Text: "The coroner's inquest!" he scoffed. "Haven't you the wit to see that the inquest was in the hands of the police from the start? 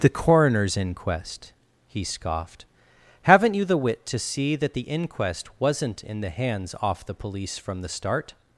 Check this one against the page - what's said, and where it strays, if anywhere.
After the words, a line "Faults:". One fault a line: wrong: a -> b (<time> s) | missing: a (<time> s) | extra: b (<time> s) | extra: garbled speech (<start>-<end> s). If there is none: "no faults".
"The coroner's inquest!" he scoffed. "Haven't you the wit to see that the inquest wasn't in the hands off the police from the start?
Faults:
wrong: was -> wasn't (5.6 s)
wrong: of -> off (6.8 s)